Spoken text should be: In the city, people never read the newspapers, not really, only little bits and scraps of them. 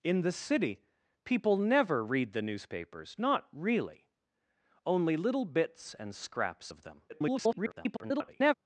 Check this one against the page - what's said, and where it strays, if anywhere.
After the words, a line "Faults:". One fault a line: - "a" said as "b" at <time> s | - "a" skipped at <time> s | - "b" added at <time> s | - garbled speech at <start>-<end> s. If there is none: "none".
In the city, people never read the newspapers, not really, only little bits and scraps of them. [garbled]
Faults:
- garbled speech at 7.1-8.5 s